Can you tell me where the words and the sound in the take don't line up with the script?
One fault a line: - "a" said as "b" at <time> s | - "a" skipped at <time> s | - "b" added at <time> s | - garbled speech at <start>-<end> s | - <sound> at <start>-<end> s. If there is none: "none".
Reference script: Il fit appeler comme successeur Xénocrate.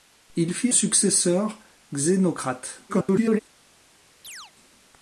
- "appeler comme" skipped at 0.7 s
- garbled speech at 2.9-3.4 s
- chirp at 4.2-4.5 s